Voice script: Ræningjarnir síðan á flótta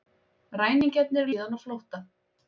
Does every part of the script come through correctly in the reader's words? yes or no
yes